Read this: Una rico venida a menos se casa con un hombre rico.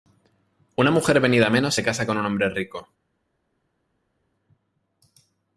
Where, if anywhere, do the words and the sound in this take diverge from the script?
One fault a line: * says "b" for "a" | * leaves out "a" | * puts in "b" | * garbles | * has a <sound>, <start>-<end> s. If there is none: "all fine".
* says "mujer" for "rico"